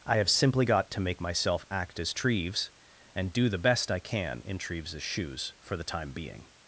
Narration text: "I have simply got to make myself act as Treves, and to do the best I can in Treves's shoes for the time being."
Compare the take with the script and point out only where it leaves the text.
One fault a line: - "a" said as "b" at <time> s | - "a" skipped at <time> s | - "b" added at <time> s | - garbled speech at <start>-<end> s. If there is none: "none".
- "to" skipped at 3.3 s